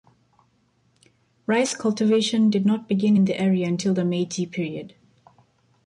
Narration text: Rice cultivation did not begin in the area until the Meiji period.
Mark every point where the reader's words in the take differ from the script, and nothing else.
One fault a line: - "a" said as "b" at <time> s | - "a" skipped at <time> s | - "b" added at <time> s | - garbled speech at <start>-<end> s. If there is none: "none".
none